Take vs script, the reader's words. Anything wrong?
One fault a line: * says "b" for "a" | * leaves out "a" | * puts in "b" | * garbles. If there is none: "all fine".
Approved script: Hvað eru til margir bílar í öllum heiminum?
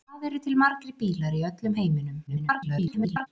* garbles